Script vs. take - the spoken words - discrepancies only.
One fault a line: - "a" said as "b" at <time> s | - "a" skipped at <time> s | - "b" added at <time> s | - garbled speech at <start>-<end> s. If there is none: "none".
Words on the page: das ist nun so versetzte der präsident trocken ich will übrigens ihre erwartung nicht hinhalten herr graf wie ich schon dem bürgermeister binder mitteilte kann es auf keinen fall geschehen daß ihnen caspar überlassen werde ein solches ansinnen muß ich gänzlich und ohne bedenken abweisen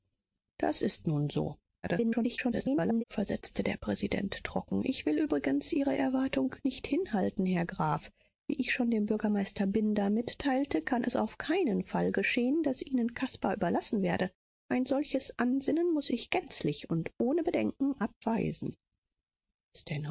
- garbled speech at 1.8-3.0 s